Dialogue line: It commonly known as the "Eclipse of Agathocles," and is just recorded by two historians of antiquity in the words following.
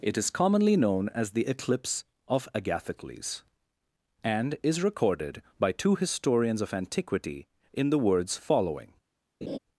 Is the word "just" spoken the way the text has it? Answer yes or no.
no